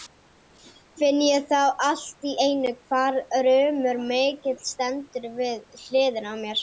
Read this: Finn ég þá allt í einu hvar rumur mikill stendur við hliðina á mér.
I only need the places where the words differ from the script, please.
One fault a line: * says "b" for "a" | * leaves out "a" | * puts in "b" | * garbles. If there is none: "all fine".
all fine